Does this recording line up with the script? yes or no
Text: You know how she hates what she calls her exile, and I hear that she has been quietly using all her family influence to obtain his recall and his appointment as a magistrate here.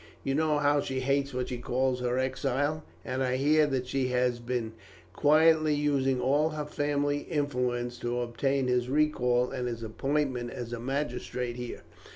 yes